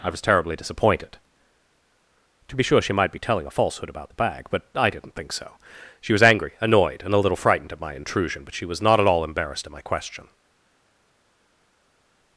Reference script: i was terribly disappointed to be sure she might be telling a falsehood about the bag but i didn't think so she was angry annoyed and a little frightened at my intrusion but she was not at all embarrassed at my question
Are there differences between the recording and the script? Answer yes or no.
no